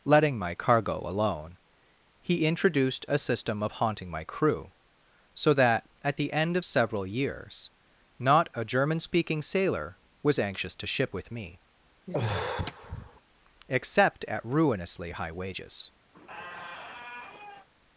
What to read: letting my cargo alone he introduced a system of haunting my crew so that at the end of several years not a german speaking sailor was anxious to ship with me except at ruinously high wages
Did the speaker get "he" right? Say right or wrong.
right